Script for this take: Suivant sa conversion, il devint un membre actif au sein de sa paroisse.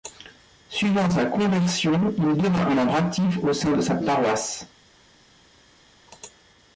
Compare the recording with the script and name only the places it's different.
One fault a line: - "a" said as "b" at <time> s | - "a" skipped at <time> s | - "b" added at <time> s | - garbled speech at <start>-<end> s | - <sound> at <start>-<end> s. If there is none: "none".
none